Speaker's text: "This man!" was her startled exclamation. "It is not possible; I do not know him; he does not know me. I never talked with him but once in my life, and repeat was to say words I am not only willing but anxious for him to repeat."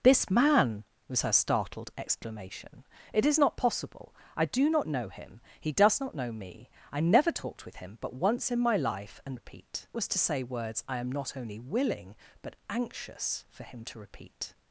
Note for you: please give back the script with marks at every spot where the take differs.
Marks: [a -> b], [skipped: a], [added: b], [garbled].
"This man!" was her startled exclamation. "It is not possible; I do not know him; he does not know me. I never talked with him but once in my life, and repeat was to say words I am not only willing but anxious for him to repeat."